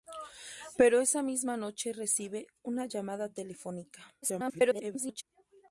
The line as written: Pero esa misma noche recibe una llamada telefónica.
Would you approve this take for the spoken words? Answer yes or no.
no